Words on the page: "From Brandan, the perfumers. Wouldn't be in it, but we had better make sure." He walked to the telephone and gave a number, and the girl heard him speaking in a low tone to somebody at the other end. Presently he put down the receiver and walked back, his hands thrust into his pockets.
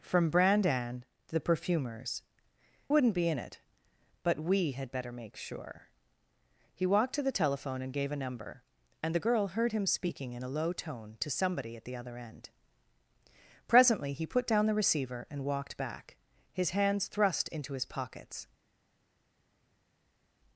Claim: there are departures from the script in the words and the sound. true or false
false